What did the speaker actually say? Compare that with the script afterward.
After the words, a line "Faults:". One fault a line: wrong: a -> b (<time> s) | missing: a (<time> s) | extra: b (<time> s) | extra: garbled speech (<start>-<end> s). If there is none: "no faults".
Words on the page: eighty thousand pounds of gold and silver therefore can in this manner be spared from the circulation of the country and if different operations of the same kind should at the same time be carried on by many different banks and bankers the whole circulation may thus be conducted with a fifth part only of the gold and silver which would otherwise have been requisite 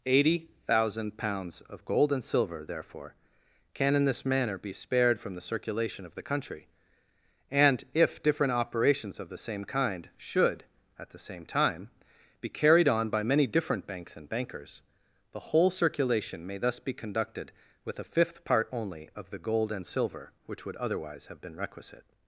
eighty thousand pounds of gold and silver therefore can in this manner be spared from the circulation of the country and if different operations of the same kind should at the same time be carried on by many different banks and bankers the whole circulation may thus be conducted with a fifth part only of the gold and silver which would otherwise have been requisite
Faults:
no faults